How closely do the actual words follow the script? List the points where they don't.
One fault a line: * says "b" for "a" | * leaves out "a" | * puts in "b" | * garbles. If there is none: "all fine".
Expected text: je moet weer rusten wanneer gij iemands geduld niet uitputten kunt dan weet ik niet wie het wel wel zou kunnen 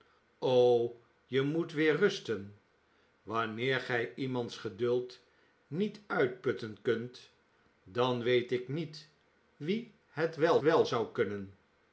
all fine